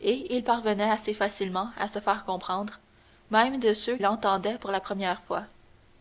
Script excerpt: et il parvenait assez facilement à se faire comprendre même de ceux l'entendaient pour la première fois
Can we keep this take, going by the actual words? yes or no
yes